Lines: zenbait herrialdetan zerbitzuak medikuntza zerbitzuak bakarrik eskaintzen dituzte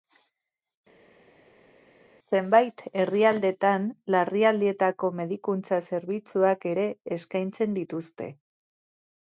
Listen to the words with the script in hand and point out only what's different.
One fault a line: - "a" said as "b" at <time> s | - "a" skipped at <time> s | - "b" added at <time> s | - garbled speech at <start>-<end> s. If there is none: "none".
- "zerbitzuak" said as "larrialdietako" at 4.2 s
- "bakarrik" said as "ere" at 6.7 s